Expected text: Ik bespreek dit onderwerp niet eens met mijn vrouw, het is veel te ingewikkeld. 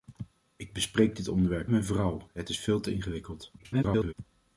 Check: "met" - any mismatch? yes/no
yes